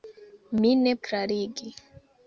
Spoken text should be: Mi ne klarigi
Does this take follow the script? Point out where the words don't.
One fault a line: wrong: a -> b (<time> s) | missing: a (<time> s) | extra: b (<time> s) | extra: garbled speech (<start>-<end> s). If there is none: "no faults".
no faults